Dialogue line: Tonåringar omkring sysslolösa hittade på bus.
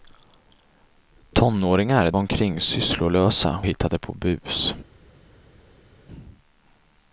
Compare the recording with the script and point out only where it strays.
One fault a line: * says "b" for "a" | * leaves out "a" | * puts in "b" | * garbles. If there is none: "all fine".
all fine